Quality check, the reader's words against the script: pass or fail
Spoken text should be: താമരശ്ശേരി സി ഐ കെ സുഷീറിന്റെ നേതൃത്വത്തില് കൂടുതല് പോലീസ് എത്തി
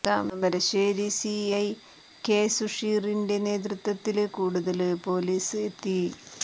pass